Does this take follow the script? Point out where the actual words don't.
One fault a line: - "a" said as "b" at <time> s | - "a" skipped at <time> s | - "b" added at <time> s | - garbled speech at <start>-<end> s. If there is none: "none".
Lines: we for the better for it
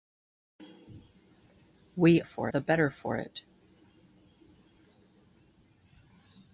none